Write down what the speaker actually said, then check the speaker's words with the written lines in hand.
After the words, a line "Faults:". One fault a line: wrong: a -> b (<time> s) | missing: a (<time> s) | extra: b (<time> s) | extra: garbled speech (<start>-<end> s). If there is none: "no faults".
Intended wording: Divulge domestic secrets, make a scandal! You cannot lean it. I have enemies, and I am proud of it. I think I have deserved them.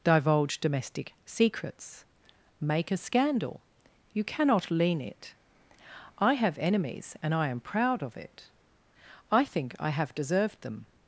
Divulge domestic secrets, make a scandal! You cannot lean it. I have enemies, and I am proud of it. I think I have deserved them.
Faults:
no faults